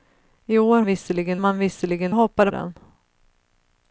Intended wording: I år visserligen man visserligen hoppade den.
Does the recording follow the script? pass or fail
pass